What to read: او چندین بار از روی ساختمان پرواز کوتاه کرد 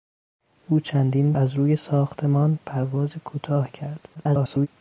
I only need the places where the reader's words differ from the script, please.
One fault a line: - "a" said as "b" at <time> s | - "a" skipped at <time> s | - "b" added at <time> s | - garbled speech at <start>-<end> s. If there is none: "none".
- "بار" skipped at 1.3 s
- garbled speech at 4.1-4.7 s